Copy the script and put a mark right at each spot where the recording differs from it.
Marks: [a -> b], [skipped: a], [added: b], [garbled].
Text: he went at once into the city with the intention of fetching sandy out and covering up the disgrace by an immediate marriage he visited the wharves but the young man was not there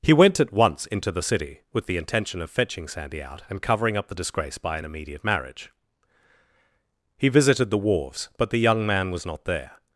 he went at once into the city with the intention of fetching sandy out and covering up the disgrace by an immediate marriage he visited the wharves but the young man was not there